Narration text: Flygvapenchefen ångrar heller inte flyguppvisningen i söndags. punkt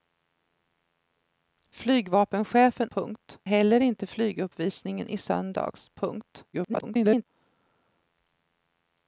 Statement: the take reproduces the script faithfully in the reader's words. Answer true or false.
false